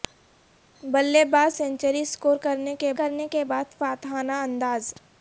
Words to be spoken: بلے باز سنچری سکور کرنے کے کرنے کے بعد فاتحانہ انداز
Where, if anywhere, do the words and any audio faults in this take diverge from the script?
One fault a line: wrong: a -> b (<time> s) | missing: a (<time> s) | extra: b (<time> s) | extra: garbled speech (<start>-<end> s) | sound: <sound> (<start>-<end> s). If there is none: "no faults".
no faults